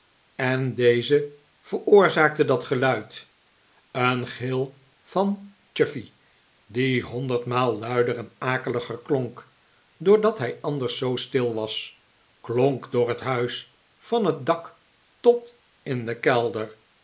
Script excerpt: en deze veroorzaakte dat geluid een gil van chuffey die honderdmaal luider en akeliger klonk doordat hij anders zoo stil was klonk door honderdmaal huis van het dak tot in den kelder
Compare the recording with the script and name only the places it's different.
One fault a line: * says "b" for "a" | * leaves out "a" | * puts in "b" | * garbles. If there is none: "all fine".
* says "het" for "honderdmaal"